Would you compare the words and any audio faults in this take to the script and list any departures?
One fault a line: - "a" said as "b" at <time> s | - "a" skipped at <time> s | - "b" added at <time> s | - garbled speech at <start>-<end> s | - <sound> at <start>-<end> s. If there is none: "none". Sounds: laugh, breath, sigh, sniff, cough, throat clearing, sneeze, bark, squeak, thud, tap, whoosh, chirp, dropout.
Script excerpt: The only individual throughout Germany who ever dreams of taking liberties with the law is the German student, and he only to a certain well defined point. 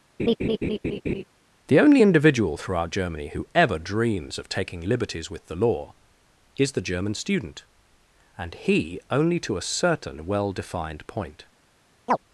- laugh at 0.2-1.2 s
- chirp at 12.1-12.2 s